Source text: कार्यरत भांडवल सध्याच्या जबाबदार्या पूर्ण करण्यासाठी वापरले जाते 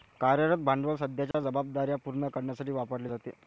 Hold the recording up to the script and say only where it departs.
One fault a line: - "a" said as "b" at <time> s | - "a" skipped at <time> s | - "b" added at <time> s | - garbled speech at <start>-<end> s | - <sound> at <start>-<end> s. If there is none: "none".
- dropout at 1.3-1.3 s